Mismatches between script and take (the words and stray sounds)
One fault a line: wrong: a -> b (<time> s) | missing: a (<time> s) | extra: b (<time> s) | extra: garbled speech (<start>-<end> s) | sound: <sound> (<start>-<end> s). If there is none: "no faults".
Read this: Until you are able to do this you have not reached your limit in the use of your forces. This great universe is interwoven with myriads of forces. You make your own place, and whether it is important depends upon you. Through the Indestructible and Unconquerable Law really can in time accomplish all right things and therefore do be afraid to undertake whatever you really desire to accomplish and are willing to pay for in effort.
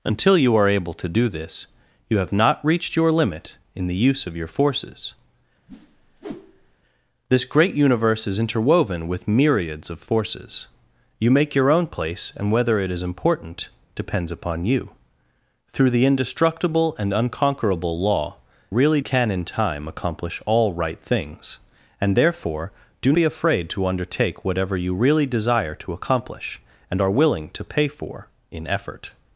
sound: whoosh (5.7-6.8 s)